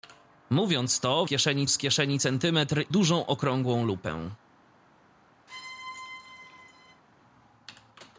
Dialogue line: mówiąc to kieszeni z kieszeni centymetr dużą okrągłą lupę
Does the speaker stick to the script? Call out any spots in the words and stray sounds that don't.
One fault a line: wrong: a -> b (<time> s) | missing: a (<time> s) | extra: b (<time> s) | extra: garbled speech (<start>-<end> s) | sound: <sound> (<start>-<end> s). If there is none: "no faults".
sound: squeak (5.5-7.0 s)